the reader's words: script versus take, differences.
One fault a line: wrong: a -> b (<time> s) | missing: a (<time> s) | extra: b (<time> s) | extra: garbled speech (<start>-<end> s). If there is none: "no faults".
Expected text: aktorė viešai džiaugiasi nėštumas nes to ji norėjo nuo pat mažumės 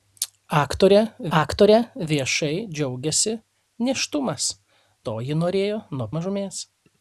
extra: aktorė (1.4 s)
missing: nes (4.5 s)
missing: pat (6.1 s)